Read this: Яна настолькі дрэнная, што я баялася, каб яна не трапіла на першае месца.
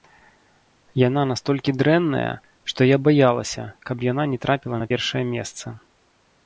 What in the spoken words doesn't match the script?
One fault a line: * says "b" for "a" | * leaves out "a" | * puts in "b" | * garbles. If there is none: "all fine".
all fine